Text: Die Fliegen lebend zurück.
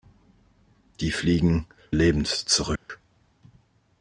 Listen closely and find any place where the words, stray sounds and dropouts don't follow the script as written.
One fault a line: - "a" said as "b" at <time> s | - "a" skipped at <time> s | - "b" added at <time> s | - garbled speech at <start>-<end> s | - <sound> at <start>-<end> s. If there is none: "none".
- dropout at 2.8-2.9 s